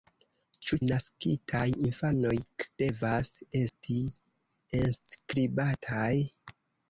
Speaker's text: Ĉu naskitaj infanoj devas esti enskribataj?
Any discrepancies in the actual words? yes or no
no